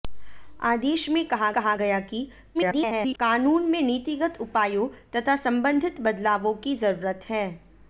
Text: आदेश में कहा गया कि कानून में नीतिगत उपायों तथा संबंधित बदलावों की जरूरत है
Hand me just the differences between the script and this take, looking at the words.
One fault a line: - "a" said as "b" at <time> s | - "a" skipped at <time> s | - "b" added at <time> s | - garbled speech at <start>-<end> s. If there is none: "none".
- "कहा" added at 1.5 s
- garbled speech at 2.5-3.2 s